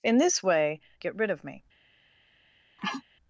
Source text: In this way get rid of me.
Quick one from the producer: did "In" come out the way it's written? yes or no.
yes